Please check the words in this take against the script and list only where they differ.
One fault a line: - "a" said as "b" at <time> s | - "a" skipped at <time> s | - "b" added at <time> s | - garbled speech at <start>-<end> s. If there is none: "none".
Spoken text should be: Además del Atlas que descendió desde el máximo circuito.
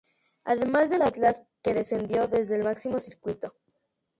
none